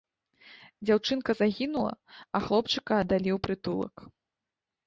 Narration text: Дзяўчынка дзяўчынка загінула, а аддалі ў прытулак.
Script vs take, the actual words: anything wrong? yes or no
yes